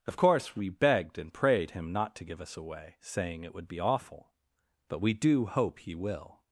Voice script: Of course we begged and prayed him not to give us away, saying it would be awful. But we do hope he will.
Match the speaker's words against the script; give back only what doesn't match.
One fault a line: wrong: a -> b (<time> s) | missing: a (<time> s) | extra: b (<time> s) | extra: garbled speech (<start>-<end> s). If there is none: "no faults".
no faults